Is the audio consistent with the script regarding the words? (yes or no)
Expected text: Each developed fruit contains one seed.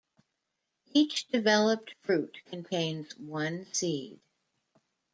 yes